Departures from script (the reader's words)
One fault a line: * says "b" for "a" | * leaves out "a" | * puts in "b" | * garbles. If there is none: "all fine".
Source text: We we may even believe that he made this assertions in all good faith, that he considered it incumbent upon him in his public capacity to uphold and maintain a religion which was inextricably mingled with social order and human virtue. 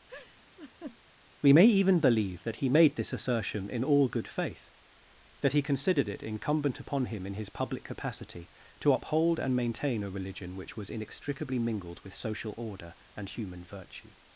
* leaves out "we"
* says "assertion" for "assertions"